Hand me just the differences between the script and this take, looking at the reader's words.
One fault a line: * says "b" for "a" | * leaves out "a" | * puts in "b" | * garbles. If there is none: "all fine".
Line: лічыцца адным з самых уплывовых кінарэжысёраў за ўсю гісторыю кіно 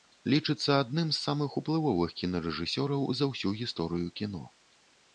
all fine